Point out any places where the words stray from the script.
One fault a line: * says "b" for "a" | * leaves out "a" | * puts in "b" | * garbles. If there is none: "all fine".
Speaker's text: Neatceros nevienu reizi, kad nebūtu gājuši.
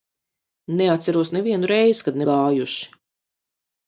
* leaves out "nebūtu"